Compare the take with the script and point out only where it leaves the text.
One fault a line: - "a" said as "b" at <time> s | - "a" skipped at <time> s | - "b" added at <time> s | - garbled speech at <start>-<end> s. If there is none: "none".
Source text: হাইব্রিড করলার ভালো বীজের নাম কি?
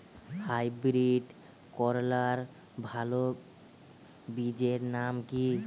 none